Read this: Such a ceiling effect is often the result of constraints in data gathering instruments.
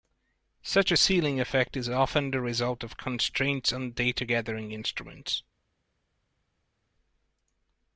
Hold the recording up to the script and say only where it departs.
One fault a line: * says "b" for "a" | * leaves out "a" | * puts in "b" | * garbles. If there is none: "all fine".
* says "on" for "in"